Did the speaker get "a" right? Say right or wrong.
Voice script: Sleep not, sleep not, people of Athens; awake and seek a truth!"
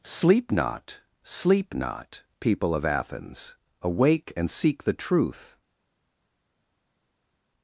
wrong